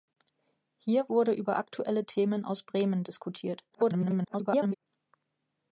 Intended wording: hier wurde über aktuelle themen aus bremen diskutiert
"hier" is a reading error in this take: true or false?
false